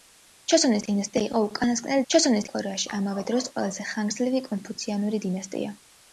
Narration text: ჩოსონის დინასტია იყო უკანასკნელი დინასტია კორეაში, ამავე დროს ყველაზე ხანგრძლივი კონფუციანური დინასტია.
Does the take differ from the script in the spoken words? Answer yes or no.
yes